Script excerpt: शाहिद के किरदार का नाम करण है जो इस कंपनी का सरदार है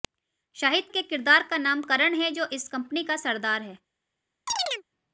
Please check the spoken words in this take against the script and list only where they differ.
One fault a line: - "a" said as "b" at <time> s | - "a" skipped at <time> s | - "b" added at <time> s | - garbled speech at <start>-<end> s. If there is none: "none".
none